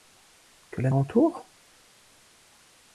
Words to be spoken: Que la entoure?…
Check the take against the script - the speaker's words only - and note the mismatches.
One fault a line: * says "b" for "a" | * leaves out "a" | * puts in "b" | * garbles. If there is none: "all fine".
all fine